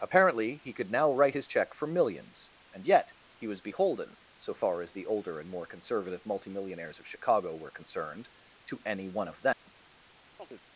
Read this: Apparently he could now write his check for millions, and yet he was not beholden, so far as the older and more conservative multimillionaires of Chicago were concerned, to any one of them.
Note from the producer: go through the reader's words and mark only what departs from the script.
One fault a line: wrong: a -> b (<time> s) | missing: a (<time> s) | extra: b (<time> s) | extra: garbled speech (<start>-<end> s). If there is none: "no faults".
missing: not (3.6 s)